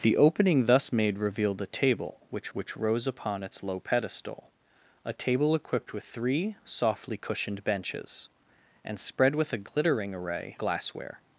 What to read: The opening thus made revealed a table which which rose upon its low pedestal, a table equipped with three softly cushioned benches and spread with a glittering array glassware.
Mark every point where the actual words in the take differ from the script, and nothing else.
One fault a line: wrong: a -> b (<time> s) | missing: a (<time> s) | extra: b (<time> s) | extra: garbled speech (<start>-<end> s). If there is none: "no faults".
no faults